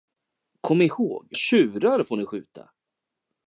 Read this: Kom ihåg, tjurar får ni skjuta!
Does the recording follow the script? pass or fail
pass